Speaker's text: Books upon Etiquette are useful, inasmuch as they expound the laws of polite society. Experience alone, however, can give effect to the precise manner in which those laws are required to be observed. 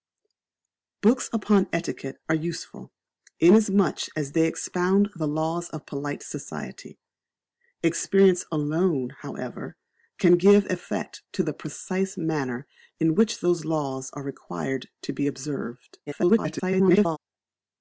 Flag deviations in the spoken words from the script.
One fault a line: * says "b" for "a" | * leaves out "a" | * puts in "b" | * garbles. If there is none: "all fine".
* garbles